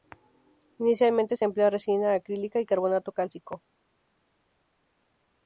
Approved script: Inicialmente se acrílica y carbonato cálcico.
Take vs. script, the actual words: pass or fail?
fail